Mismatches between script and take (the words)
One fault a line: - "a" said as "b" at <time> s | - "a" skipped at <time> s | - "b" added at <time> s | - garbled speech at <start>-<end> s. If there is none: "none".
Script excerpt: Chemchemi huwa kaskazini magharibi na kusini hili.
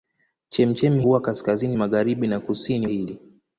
none